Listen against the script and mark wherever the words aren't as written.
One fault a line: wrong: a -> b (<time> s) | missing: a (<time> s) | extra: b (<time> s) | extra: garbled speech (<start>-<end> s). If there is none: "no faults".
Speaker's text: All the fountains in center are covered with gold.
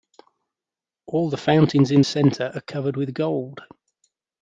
no faults